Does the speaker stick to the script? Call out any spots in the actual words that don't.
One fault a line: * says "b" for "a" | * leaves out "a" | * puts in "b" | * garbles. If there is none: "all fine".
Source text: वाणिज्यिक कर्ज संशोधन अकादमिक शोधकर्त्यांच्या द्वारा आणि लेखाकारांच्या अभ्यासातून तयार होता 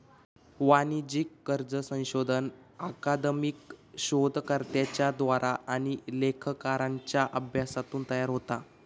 all fine